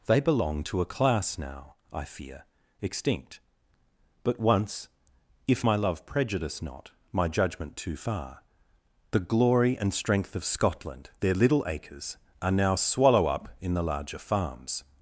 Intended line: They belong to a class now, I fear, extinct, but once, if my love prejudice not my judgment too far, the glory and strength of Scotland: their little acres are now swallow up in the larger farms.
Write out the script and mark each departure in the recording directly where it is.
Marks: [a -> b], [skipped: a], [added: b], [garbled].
They belong to a class now, I fear, extinct, but once, if my love prejudice not my judgment too far, the glory and strength of Scotland: their little acres are now swallow up in the larger farms.